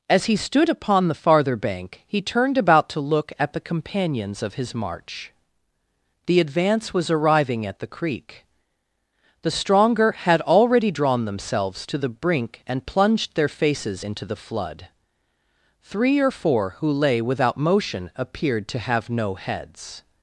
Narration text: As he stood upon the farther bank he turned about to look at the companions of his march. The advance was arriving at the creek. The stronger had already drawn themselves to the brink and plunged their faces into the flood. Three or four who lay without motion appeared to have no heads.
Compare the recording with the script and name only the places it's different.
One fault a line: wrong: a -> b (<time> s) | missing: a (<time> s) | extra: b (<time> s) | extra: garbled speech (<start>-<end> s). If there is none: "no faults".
no faults